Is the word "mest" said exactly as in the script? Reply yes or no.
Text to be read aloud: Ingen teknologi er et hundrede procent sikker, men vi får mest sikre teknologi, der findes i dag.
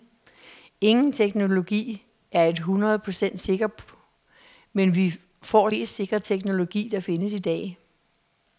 yes